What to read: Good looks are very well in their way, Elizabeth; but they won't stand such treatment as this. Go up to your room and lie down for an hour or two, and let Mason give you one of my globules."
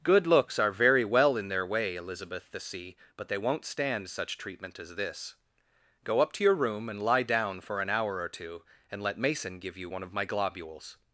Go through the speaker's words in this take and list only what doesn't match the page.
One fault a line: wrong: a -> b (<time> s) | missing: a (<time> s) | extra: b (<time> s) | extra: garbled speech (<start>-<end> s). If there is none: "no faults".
extra: the sea (2.5 s)